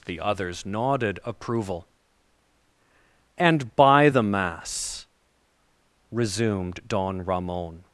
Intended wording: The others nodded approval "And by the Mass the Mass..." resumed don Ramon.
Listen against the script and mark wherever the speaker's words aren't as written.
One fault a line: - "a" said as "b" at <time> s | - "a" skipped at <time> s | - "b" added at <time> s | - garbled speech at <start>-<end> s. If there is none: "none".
- "the Mass" skipped at 5.1 s